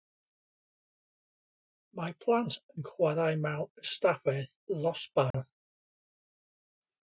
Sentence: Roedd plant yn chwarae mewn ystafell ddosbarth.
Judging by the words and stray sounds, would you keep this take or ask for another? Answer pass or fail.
fail